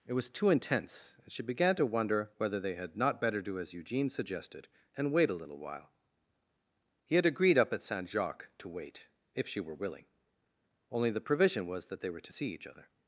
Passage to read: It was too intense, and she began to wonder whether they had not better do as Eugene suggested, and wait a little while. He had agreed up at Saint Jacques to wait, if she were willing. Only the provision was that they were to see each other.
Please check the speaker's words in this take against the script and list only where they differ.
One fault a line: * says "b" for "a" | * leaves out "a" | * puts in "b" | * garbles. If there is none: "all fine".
all fine